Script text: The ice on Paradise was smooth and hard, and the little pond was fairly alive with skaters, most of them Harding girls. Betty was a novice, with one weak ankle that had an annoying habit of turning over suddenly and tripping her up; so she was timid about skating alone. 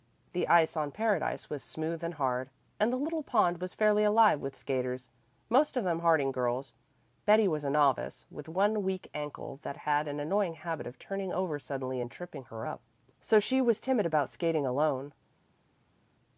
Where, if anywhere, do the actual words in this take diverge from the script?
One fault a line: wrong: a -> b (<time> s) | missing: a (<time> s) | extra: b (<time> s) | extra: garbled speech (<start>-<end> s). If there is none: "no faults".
no faults